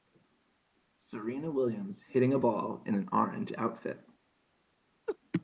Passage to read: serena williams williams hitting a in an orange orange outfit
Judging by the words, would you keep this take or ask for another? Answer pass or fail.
fail